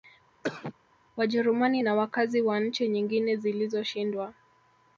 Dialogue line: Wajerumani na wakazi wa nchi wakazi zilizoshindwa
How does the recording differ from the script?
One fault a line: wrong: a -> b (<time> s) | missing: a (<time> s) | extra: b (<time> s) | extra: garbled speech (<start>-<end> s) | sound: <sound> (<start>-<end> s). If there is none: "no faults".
sound: cough (0.4-0.7 s)
wrong: wakazi -> nyingine (2.9 s)